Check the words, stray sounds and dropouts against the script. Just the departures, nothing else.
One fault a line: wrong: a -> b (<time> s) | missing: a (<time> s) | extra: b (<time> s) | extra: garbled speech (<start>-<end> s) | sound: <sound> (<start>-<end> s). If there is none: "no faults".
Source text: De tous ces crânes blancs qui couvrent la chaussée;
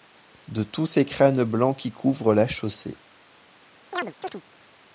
sound: chirp (3.9-4.4 s)